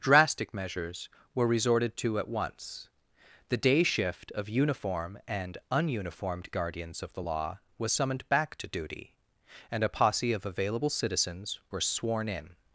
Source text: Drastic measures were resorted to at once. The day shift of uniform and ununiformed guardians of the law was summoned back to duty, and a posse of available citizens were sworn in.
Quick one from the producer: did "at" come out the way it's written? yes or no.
yes